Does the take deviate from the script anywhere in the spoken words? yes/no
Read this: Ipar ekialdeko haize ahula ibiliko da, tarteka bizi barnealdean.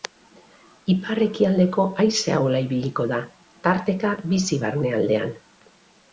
no